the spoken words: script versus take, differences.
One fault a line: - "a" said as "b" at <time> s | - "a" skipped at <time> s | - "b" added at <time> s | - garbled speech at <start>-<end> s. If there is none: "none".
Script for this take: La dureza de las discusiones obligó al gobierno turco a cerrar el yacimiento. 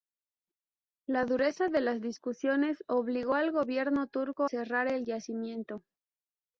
- "a" skipped at 4.5 s